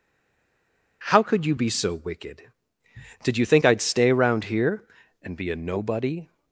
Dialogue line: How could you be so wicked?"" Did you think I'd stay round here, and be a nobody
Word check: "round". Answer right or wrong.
wrong